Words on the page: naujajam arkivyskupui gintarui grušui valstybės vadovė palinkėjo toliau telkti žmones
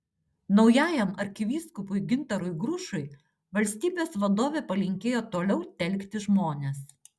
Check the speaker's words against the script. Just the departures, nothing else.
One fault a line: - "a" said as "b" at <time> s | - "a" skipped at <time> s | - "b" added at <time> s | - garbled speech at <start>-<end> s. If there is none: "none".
none